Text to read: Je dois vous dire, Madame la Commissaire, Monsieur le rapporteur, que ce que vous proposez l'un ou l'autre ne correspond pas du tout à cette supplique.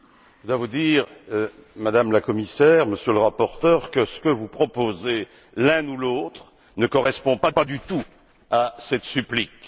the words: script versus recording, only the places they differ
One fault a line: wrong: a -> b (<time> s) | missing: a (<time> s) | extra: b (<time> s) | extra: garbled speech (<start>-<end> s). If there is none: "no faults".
extra: pas (7.5 s)